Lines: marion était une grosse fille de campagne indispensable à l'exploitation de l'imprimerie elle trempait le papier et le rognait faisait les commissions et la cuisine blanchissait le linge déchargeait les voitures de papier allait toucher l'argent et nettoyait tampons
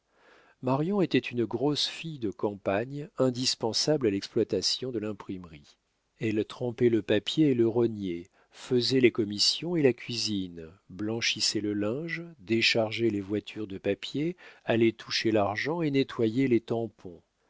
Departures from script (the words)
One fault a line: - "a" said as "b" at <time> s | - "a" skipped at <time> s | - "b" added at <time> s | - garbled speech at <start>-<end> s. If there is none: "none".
- "les" added at 16.5 s